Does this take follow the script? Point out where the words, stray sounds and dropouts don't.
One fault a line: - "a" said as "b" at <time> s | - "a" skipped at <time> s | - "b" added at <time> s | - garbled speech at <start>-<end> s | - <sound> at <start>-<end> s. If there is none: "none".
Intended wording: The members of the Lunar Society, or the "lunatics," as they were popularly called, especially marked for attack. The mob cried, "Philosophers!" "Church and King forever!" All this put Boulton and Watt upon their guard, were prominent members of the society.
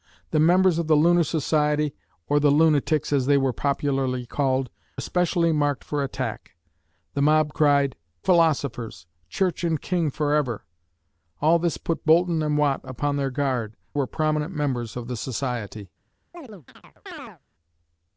- chirp at 16.3-17.4 s